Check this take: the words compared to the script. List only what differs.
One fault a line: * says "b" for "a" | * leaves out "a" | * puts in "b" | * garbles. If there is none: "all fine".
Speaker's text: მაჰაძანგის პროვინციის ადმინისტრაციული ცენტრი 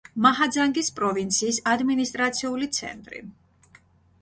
all fine